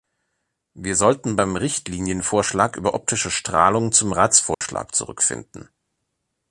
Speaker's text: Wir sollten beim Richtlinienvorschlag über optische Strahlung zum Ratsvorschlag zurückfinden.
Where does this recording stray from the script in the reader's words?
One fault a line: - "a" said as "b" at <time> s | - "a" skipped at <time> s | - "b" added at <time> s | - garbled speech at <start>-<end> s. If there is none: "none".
none